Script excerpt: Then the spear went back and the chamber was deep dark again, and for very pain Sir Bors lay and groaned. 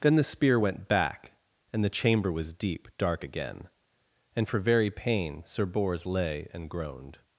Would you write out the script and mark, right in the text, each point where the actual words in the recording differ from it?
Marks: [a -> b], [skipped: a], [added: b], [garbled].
Then the spear went back and the chamber was deep dark again, and for very pain Sir Bors lay and groaned.